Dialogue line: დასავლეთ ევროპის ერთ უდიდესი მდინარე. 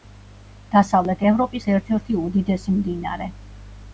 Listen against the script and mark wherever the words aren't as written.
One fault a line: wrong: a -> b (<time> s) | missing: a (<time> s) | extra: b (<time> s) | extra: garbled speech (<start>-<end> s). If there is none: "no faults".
extra: ერთი (2.0 s)